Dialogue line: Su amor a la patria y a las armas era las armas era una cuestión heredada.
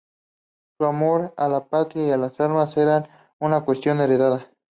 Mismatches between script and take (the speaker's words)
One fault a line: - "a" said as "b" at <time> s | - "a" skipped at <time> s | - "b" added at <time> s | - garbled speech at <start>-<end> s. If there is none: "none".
- "las armas era" skipped at 3.4 s